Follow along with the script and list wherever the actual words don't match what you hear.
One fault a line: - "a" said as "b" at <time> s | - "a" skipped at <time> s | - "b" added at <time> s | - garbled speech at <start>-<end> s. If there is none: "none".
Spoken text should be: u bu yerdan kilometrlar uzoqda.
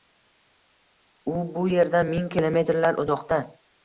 - "ming" added at 2.1 s